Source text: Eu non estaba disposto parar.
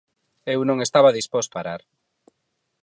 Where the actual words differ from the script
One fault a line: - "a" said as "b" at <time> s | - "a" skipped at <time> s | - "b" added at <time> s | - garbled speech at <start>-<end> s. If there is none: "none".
none